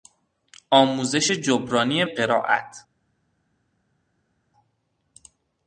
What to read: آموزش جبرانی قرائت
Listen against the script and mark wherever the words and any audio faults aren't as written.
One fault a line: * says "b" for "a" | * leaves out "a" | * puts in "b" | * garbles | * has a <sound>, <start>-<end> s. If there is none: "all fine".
all fine